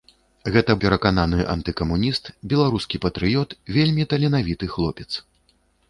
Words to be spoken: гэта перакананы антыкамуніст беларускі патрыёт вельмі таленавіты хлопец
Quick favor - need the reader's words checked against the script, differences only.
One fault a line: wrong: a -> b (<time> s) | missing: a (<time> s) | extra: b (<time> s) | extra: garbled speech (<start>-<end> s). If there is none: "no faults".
no faults